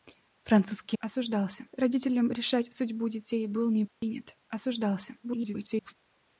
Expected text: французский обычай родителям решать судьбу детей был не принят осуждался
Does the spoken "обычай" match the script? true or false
false